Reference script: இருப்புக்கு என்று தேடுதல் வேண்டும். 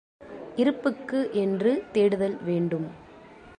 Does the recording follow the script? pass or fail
pass